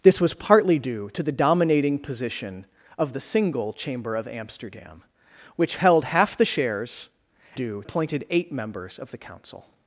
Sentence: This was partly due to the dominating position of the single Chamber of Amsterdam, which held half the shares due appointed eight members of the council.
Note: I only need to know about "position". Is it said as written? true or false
true